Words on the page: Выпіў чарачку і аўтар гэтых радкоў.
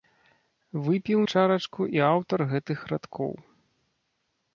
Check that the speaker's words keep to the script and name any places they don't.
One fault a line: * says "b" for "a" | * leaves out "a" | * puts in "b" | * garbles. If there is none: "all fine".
all fine